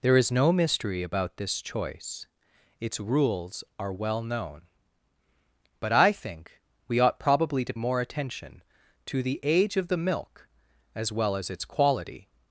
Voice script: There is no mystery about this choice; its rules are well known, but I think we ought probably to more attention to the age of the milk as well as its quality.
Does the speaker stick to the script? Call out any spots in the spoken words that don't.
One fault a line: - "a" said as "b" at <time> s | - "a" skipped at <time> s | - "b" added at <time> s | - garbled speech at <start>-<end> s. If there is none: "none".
none